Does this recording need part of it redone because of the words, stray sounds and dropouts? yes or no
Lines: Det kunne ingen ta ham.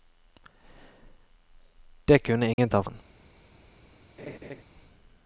yes